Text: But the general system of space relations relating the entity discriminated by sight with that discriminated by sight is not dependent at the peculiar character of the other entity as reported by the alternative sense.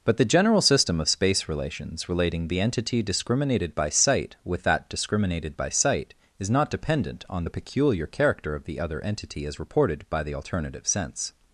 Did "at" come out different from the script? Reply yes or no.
yes